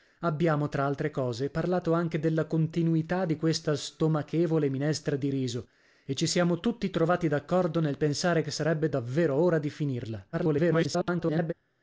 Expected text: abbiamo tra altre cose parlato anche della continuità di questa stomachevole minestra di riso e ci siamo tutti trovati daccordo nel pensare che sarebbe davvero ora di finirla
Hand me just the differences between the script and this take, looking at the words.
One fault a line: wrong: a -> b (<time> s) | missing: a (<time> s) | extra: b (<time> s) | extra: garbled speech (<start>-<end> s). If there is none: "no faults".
extra: garbled speech (10.3-11.5 s)